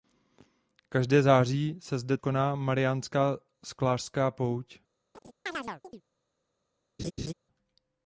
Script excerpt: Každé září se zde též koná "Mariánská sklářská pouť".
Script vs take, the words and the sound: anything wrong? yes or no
yes